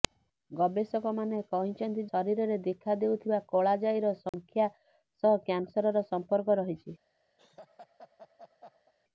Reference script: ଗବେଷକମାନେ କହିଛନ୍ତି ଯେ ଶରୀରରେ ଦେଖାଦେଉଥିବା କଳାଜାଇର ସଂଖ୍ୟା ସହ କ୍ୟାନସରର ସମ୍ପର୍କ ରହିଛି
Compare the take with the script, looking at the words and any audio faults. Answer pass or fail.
fail